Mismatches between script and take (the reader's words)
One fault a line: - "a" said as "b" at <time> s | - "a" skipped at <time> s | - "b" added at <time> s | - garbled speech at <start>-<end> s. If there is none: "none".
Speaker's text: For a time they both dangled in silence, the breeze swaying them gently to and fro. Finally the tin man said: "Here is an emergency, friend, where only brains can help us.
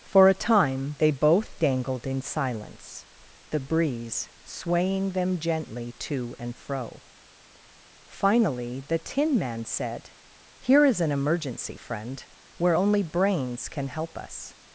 none